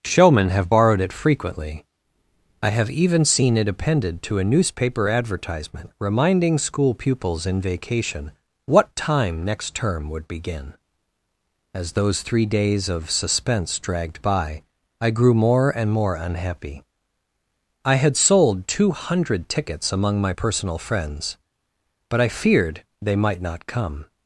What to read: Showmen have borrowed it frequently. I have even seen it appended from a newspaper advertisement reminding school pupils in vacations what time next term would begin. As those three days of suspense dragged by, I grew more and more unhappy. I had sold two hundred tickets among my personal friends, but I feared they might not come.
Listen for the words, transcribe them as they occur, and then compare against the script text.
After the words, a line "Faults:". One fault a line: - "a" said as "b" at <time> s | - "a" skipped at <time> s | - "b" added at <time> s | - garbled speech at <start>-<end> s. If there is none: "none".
Showmen have borrowed it frequently. I have even seen it appended to a newspaper advertisement reminding school pupils in vacation what time next term would begin. As those three days of suspense dragged by, I grew more and more unhappy. I had sold two hundred tickets among my personal friends, but I feared they might not come.
Faults:
- "from" said as "to" at 4.2 s
- "vacations" said as "vacation" at 7.6 s